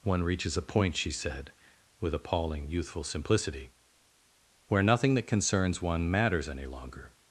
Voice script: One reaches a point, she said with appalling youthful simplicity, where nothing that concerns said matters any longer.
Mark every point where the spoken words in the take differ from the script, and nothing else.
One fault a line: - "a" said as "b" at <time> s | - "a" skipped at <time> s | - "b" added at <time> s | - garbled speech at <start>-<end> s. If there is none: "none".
- "said" said as "one" at 5.8 s